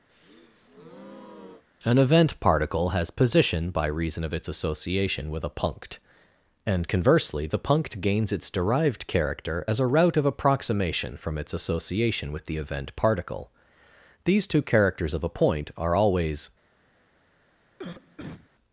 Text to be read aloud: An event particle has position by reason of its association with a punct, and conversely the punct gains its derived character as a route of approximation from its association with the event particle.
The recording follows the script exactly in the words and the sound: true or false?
false